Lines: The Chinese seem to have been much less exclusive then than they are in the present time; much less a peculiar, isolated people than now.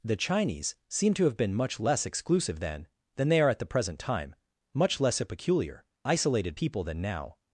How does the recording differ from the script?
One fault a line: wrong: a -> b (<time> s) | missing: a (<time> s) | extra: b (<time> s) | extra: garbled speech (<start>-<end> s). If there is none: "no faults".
wrong: in -> at (3.5 s)